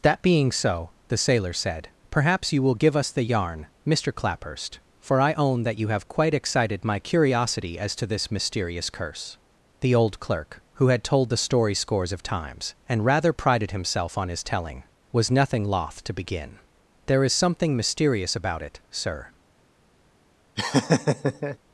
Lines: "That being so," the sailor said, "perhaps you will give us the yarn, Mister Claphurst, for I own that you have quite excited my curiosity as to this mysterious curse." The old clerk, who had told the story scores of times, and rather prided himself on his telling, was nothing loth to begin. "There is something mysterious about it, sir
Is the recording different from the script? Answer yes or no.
no